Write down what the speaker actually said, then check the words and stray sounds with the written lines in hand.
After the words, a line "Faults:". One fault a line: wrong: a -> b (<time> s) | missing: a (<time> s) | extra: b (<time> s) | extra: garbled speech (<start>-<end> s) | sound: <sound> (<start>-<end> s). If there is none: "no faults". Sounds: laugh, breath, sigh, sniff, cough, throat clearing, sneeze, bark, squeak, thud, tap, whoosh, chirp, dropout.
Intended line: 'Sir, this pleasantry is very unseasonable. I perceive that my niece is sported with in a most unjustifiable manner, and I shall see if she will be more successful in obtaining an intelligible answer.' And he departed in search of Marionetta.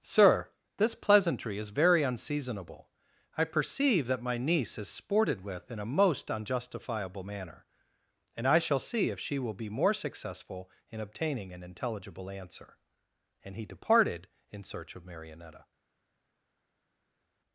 'Sir, this pleasantry is very unseasonable. I perceive that my niece is sported with in a most unjustifiable manner, and I shall see if she will be more successful in obtaining an intelligible answer.' And he departed in search of Marionetta.
Faults:
no faults